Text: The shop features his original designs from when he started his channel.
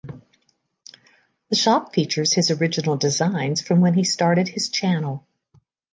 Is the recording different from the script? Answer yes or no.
no